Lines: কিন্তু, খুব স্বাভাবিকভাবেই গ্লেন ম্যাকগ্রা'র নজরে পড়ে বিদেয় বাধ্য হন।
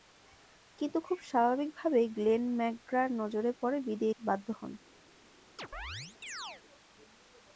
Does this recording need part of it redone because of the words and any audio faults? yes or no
yes